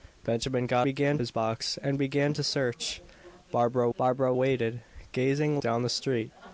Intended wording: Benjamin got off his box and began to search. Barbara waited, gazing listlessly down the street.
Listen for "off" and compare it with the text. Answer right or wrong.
wrong